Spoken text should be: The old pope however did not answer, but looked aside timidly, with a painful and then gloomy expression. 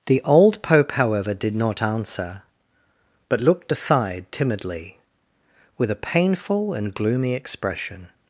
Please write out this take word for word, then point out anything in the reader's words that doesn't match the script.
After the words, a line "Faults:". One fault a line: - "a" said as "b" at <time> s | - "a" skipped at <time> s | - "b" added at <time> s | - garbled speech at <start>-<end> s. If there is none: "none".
The old pope however did not answer, but looked aside timidly, with a painful and gloomy expression.
Faults:
- "then" skipped at 6.9 s